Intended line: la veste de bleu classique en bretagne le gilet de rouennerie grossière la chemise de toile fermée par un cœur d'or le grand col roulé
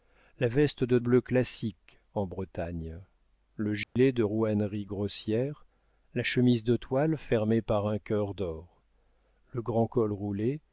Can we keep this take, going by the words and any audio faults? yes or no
no